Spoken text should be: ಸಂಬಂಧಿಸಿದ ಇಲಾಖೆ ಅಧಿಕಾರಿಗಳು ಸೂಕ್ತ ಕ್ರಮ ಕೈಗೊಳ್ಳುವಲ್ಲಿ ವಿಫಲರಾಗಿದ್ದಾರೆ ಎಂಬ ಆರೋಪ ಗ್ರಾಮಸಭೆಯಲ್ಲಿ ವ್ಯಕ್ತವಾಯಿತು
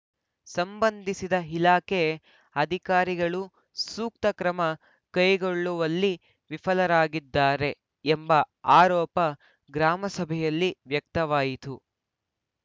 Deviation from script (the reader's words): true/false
false